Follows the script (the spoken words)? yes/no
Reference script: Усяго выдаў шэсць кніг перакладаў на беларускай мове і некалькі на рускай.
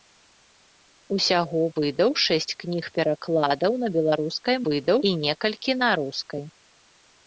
no